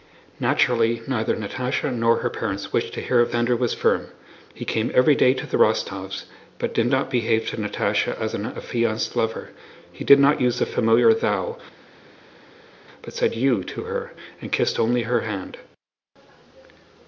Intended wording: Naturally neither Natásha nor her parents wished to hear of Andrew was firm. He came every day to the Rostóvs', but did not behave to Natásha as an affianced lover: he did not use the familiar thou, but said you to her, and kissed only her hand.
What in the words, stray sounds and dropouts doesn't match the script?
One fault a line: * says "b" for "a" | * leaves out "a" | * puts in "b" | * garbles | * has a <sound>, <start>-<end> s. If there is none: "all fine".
all fine